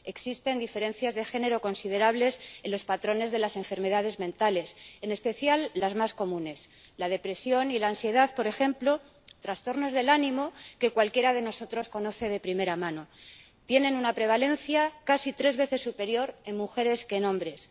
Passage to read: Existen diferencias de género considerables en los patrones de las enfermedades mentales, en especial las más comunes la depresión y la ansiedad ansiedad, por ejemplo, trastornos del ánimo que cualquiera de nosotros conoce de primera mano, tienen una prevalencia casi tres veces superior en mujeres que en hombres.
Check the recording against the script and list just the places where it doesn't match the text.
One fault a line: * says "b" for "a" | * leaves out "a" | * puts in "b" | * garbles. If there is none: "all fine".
* leaves out "ansiedad"